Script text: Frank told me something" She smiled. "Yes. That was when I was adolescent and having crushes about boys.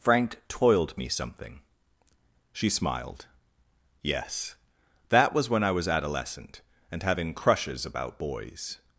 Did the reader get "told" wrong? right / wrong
wrong